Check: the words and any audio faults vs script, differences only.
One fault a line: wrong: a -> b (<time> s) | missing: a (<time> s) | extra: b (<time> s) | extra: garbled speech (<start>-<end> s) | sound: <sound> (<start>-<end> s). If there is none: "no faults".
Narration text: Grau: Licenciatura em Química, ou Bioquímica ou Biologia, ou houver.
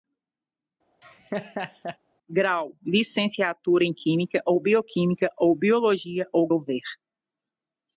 sound: laugh (1.0-2.0 s)